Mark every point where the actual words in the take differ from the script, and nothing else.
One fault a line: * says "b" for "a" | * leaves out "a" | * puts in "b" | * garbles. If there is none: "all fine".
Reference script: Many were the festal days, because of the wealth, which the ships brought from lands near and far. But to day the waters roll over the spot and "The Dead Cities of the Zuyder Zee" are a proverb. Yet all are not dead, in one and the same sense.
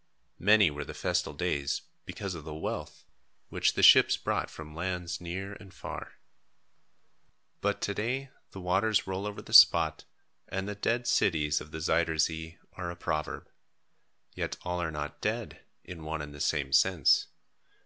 all fine